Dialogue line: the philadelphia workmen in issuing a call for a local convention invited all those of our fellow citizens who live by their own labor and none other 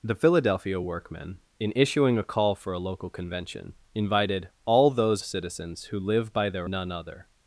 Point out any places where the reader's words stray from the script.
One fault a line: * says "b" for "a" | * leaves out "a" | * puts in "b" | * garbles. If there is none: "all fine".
* leaves out "of our fellow"
* leaves out "own labor and"